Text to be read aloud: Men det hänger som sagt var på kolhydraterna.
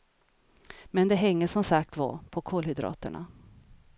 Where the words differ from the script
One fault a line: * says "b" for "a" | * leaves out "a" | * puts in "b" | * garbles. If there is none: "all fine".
all fine